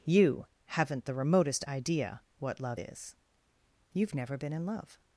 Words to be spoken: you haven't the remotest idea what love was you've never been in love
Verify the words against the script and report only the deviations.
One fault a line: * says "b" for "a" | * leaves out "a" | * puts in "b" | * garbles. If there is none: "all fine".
* says "is" for "was"